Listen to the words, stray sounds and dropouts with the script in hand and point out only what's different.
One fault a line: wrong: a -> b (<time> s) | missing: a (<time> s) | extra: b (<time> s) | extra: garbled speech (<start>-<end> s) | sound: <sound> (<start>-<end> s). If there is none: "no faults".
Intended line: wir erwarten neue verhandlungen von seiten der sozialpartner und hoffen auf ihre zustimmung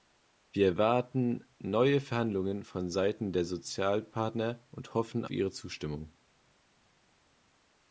missing: auf (5.2 s)